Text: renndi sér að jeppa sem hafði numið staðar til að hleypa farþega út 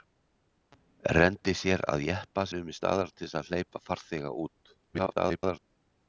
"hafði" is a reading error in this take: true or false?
true